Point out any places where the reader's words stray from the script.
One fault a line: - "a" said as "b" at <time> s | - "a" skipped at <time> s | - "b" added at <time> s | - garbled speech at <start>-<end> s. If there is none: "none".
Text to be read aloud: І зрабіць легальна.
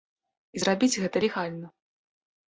- "гэта" added at 1.1 s